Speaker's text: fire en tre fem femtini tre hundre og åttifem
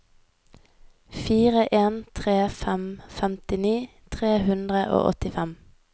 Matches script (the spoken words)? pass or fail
pass